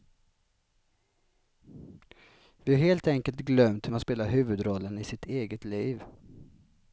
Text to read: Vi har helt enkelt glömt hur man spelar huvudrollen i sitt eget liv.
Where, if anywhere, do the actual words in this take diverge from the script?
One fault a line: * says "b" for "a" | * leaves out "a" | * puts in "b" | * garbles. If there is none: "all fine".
all fine